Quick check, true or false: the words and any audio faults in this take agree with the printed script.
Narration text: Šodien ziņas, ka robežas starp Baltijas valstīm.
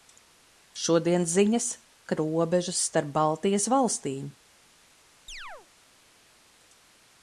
false